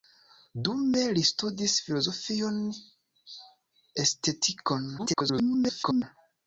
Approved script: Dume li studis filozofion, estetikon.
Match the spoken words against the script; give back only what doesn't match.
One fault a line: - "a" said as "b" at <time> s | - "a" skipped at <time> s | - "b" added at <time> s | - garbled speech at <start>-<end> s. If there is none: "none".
- garbled speech at 5.0-6.0 s